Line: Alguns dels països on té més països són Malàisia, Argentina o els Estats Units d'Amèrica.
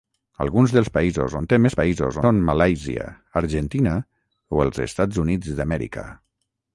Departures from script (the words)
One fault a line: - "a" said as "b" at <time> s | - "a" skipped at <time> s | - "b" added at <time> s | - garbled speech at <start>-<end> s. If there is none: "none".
none